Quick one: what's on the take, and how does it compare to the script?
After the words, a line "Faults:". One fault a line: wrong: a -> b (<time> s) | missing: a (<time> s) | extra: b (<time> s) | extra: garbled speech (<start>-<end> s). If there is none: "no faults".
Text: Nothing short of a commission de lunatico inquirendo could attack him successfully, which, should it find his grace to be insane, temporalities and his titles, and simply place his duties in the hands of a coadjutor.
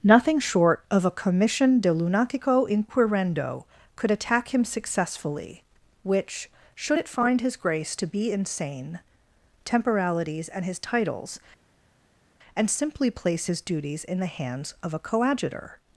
Nothing short of a commission de lunatico inquirendo could attack him successfully, which, should it find his grace to be insane, temporalities and his titles, and simply place his duties in the hands of a coadjutor.
Faults:
no faults